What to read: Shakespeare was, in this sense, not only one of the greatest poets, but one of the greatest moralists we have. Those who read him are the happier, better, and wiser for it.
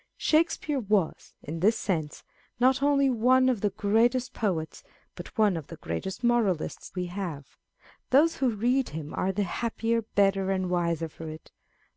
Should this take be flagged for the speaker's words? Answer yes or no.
no